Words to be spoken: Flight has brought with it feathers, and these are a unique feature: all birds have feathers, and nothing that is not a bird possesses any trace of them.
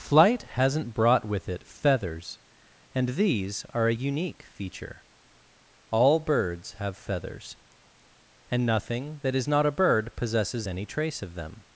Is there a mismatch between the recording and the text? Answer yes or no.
yes